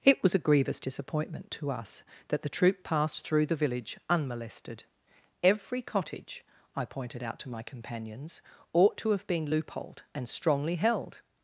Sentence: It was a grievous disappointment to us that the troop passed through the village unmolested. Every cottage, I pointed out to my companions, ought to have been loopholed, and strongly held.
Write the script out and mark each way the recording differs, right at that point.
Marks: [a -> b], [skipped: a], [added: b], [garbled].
It was a grievous disappointment to us that the troop passed through the village unmolested. Every cottage, I pointed out to my companions, ought to have been loopholed, and strongly held.